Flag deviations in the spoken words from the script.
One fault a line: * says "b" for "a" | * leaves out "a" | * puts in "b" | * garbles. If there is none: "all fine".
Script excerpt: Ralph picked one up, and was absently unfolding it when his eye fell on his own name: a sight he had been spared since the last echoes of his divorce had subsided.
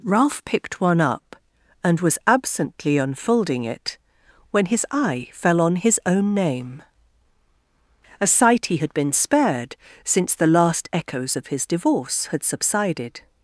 all fine